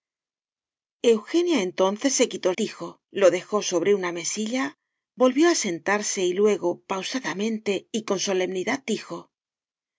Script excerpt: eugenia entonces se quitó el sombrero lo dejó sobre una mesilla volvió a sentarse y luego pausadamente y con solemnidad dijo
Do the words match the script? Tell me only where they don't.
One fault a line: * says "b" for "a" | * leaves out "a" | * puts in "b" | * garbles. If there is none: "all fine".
* says "dijo" for "sombrero"